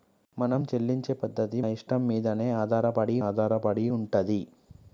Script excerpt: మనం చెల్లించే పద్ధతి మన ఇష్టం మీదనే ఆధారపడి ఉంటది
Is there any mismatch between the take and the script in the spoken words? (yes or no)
yes